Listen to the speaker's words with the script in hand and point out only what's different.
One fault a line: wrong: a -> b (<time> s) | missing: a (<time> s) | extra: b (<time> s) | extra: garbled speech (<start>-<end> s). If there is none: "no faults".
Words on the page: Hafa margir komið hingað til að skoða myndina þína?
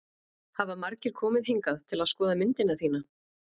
no faults